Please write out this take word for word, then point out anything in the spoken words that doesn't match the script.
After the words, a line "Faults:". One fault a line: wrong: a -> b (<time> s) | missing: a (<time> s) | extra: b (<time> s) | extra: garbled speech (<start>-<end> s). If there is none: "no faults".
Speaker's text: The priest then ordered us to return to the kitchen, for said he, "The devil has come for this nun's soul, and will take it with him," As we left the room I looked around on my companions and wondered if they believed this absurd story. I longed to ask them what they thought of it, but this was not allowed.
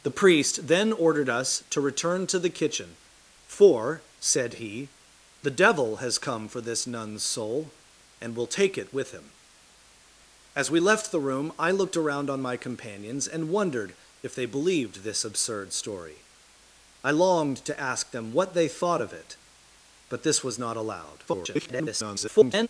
The priest then ordered us to return to the kitchen, for said he, "The devil has come for this nun's soul, and will take it with him," As we left the room I looked around on my companions and wondered if they believed this absurd story. I longed to ask them what they thought of it, but this was not allowed. [garbled]
Faults:
extra: garbled speech (21.3-22.7 s)